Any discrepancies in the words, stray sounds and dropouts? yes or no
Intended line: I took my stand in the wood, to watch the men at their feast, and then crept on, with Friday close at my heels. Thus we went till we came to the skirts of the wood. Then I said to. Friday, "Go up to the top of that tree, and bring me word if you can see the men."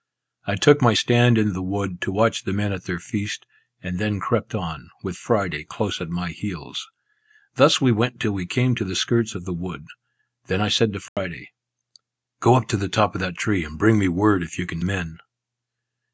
yes